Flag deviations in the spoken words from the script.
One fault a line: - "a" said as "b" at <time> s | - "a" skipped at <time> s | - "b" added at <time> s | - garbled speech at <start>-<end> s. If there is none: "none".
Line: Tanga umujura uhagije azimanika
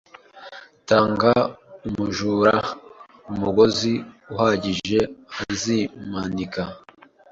- "umugozi" added at 3.3 s